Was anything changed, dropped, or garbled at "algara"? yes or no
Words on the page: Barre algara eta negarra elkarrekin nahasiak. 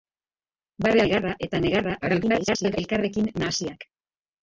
yes